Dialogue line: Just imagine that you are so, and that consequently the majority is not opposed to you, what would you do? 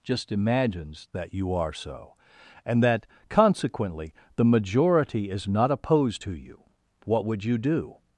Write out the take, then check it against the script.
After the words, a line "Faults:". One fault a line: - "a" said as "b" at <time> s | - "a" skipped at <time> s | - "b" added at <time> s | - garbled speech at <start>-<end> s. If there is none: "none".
Just imagines that you are so, and that consequently the majority is not opposed to you, what would you do?
Faults:
- "imagine" said as "imagines" at 0.3 s